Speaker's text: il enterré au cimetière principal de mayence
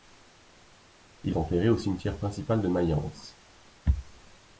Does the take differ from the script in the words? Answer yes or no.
no